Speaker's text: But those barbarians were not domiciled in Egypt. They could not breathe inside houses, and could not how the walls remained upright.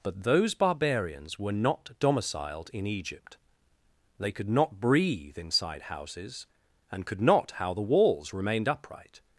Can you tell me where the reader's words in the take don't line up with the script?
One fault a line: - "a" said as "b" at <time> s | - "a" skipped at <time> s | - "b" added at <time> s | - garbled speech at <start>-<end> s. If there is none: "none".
none